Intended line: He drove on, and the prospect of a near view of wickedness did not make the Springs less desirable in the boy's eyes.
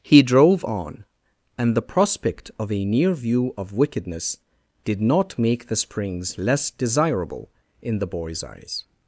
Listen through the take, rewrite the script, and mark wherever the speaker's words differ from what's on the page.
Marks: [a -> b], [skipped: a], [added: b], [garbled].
He drove on, and the prospect of a near view of wickedness did not make the Springs less desirable in the boy's eyes.